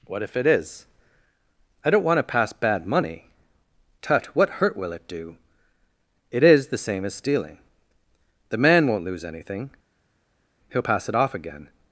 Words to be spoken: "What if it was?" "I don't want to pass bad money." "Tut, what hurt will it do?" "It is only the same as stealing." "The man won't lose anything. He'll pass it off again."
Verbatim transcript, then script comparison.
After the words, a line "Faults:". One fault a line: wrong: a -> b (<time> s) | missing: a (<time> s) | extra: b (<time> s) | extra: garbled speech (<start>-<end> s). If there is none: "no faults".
"What if it is?" "I don't want to pass bad money." "Tut, what hurt will it do?" "It is the same as stealing." "The man won't lose anything. He'll pass it off again."
Faults:
wrong: was -> is (0.5 s)
missing: only (6.7 s)